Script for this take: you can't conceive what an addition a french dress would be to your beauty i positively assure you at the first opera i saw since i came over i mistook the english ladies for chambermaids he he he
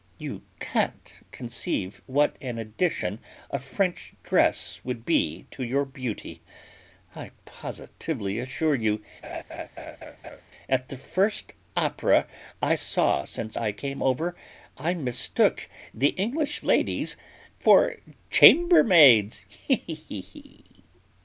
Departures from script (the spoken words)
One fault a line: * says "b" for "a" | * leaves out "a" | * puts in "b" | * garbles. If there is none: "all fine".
all fine